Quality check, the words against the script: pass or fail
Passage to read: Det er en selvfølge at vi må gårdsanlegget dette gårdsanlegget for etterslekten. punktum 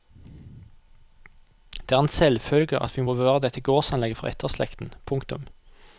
fail